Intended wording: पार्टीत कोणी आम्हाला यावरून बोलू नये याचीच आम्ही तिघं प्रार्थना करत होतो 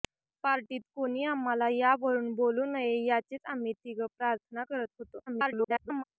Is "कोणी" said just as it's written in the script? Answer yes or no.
yes